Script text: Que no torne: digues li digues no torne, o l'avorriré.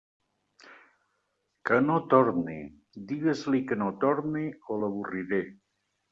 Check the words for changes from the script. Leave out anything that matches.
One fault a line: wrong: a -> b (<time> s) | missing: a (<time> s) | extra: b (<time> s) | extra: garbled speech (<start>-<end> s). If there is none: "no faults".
wrong: digues -> que (3.7 s)